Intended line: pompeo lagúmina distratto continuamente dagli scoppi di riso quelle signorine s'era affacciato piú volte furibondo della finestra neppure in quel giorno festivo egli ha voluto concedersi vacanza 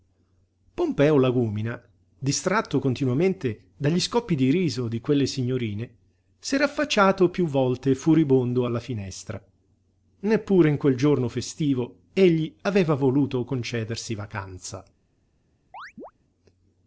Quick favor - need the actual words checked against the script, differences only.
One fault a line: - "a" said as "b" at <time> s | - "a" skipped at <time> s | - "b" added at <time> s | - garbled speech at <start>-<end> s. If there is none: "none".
- "di" added at 4.9 s
- "della" said as "alla" at 8.6 s
- "ha" said as "aveva" at 12.6 s